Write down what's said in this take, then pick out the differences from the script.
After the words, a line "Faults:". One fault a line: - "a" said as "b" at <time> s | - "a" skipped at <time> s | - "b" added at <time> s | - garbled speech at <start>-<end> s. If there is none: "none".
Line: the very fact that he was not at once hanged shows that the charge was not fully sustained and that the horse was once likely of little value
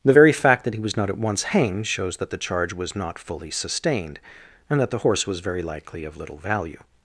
the very fact that he was not at once hanged shows that the charge was not fully sustained and that the horse was very likely of little value
Faults:
- "once" said as "very" at 5.4 s